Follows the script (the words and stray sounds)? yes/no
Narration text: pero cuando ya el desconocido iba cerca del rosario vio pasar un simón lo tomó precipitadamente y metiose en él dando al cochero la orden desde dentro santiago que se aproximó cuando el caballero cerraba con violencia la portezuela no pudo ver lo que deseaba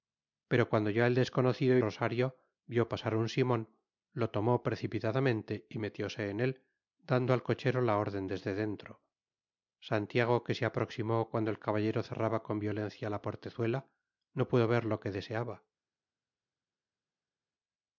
no